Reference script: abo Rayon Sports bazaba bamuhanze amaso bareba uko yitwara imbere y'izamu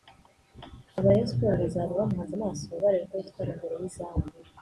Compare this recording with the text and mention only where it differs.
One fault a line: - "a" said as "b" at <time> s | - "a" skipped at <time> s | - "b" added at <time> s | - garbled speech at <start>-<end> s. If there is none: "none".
- "abo" said as "aba" at 1.0 s